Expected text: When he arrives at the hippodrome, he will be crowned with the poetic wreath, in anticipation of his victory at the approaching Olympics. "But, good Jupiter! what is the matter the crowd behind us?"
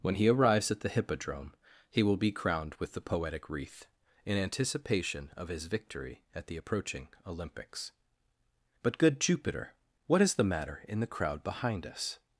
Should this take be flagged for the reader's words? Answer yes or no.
yes